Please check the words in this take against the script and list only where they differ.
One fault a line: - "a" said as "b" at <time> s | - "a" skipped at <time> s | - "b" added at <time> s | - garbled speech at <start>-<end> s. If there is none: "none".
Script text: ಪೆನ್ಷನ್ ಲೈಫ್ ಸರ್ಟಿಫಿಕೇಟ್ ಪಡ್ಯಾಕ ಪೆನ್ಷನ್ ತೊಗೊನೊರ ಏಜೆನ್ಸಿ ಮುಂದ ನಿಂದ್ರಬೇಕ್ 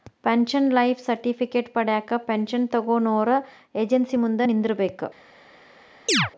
none